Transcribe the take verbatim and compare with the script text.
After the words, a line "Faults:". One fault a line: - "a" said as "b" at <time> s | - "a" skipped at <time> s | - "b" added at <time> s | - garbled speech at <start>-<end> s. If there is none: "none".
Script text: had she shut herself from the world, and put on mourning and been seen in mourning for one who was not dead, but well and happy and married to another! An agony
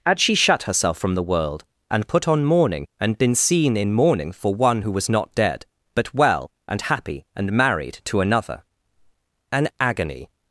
had she shut herself from the world, and put on mourning and been seen in mourning for one who was not dead, but well and happy and married to another! An agony
Faults:
none